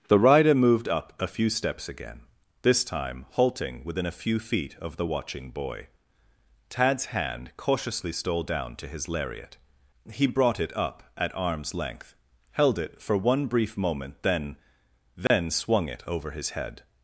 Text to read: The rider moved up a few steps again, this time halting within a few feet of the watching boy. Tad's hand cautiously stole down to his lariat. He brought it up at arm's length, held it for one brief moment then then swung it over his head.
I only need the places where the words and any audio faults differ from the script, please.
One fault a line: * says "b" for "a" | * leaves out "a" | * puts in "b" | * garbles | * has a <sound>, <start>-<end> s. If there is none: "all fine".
* has a dropout, 15.3-15.3 s